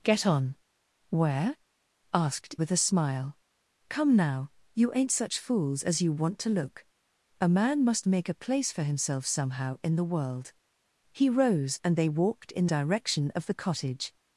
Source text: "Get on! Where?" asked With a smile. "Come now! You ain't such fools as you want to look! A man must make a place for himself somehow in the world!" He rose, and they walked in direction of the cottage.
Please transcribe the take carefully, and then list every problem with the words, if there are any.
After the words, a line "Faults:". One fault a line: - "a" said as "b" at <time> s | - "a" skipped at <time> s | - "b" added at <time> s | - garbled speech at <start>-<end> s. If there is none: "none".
"Get on! Where?" asked With a smile. "Come now! You ain't such fools as you want to look! A man must make a place for himself somehow in the world!" He rose, and they walked in direction of the cottage.
Faults:
none